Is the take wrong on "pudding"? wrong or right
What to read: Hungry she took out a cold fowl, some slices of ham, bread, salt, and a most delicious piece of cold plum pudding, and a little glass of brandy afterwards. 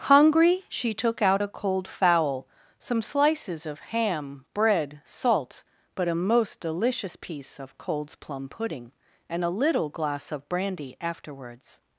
right